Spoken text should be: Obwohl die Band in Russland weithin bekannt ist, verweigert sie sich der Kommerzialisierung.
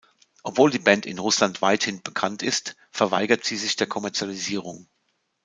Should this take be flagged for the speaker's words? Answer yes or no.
no